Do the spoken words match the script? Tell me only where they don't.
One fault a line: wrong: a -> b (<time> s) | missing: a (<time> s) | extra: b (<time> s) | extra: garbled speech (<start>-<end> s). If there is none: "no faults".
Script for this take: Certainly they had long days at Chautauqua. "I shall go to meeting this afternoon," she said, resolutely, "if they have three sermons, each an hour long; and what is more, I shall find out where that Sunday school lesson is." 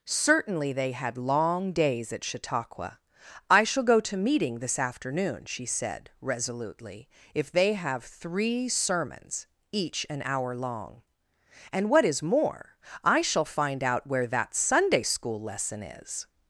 no faults